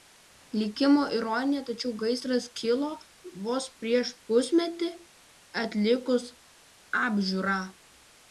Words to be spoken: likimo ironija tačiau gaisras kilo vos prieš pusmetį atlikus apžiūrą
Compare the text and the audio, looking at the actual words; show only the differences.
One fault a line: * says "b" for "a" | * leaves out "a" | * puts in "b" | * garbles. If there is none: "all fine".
all fine